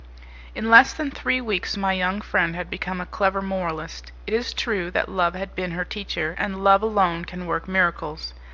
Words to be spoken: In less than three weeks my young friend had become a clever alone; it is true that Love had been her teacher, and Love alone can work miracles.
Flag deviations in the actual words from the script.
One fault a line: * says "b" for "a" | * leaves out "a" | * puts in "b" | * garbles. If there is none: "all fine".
* says "moralist" for "alone"